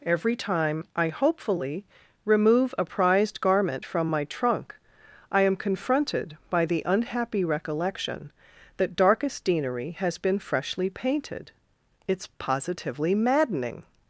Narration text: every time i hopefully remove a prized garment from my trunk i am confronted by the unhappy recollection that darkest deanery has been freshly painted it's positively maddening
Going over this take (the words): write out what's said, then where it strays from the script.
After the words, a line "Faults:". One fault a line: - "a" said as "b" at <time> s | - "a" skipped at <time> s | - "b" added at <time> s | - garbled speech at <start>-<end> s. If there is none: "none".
every time i hopefully remove a prized garment from my trunk i am confronted by the unhappy recollection that darkest deanery has been freshly painted it's positively maddening
Faults:
none